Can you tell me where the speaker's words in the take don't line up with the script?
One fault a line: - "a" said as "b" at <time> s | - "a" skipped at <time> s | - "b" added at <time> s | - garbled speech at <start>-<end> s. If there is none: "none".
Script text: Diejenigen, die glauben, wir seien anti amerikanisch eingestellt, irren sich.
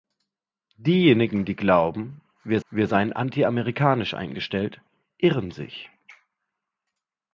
- "wir" added at 2.7 s